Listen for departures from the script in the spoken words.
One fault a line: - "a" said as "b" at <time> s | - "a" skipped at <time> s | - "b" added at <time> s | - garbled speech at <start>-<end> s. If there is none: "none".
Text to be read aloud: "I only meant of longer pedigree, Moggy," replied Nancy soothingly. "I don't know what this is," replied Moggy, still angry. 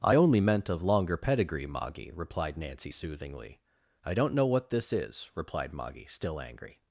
none